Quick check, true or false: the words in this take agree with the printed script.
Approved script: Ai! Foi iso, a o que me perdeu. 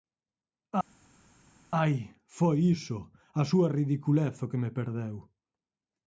false